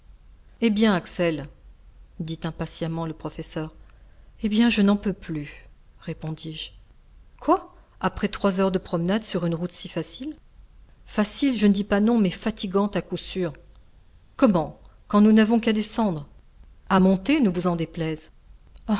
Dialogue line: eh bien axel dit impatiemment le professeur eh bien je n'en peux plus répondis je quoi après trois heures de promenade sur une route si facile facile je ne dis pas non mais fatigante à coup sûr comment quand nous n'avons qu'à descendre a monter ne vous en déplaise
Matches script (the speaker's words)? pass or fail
pass